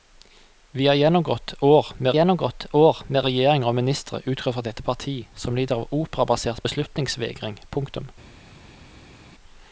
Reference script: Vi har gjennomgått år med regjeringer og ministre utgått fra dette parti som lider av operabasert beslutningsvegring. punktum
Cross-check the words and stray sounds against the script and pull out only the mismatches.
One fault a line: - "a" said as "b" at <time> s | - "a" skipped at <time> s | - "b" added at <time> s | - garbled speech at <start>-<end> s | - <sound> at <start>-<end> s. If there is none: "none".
- "gjennomgått år med" added at 2.1 s